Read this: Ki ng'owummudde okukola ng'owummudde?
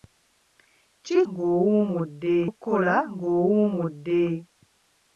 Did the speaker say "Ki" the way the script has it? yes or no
yes